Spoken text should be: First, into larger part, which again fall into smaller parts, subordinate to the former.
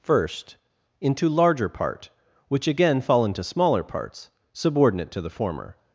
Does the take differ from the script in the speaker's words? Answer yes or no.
no